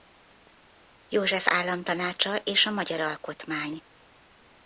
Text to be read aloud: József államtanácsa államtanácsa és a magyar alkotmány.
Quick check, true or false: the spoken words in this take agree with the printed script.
false